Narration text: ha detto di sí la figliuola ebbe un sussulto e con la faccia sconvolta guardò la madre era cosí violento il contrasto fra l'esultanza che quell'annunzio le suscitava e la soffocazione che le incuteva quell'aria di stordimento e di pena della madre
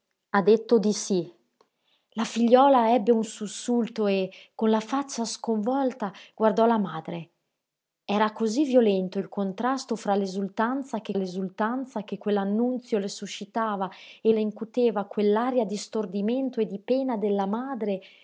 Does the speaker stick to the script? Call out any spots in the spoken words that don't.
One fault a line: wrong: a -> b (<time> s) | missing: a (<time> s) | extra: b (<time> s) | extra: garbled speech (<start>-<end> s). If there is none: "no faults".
extra: l'esultanza che (11.1 s)
missing: la soffocazione che (14.3 s)